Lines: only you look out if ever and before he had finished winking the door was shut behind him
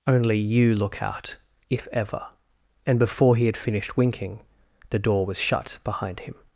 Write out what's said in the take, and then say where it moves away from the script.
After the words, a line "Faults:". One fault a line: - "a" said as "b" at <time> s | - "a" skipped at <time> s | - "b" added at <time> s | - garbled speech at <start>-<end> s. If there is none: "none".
only you look out if ever and before he had finished winking the door was shut behind him
Faults:
none